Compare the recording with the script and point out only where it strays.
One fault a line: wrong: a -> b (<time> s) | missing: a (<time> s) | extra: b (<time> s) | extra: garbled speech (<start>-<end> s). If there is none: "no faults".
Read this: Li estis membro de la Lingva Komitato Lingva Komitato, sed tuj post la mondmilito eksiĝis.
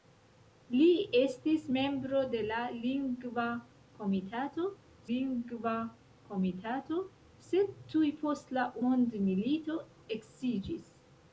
no faults